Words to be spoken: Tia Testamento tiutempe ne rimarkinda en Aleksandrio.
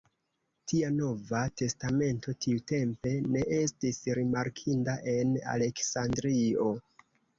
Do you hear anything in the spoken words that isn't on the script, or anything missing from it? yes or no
yes